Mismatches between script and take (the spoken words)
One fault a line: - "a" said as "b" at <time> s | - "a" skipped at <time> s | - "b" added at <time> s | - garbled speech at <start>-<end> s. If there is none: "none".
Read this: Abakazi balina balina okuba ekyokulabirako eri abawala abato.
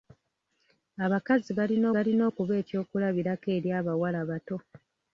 none